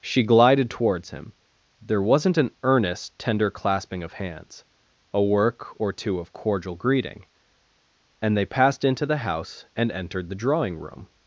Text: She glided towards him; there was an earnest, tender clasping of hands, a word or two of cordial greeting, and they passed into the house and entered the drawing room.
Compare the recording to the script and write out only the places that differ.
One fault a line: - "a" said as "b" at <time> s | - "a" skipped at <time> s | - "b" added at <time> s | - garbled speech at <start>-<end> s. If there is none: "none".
- "was" said as "wasn't" at 2.0 s
- "word" said as "work" at 5.2 s